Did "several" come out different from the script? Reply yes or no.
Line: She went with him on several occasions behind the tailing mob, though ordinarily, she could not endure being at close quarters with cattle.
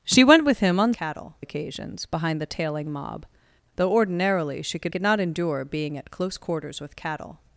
yes